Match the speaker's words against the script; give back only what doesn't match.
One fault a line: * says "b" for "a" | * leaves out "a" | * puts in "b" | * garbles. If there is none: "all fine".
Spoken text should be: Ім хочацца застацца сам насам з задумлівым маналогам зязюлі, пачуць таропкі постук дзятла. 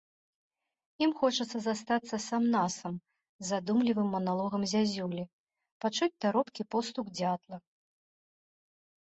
all fine